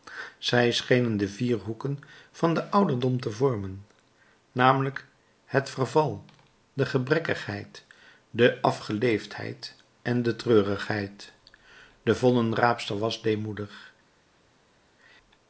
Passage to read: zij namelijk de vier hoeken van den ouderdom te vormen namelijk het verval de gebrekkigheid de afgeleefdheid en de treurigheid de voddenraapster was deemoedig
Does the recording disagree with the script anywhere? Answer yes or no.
yes